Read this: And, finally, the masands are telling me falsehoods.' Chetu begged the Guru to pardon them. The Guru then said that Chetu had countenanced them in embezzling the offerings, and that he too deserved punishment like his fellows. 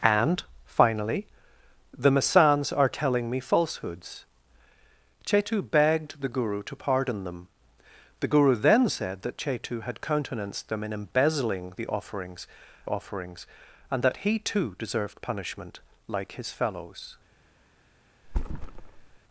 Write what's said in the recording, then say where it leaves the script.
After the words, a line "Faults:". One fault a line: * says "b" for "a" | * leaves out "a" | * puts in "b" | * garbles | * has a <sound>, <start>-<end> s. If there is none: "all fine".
And, finally, the masands are telling me falsehoods.' Chetu begged the Guru to pardon them. The Guru then said that Chetu had countenanced them in embezzling the offerings offerings, and that he too deserved punishment like his fellows.
Faults:
* puts in "offerings"
* has a thud, 18.2-19.2 s